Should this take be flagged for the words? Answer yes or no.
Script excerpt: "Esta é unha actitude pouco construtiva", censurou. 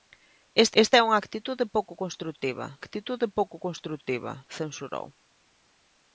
yes